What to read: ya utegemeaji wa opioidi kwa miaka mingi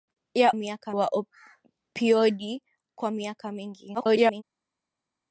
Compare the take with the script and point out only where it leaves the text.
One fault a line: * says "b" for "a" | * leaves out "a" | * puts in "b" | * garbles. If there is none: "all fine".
* says "miaka" for "utegemeaji"
* garbles